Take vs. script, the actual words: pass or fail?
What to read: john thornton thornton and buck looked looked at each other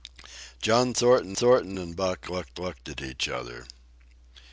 pass